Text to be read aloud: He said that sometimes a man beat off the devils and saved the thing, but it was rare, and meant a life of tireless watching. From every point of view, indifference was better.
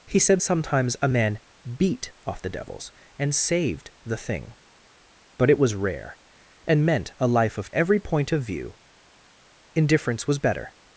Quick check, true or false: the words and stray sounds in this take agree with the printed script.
false